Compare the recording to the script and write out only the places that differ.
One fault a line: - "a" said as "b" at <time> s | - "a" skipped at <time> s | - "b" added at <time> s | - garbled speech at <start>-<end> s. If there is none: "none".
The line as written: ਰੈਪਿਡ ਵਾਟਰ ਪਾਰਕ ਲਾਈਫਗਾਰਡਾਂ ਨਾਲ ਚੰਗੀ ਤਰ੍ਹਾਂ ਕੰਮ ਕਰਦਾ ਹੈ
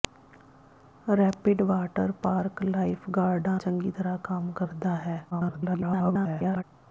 - "ਨਾਲ" skipped at 3.6 s
- garbled speech at 5.3-6.6 s